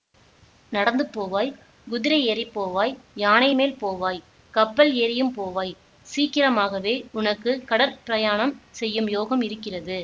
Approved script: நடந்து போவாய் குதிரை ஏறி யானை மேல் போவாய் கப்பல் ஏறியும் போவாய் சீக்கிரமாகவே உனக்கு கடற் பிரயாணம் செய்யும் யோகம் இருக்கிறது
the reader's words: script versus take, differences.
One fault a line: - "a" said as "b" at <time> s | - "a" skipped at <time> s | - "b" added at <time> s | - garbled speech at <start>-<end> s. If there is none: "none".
- "போவாய்" added at 2.5 s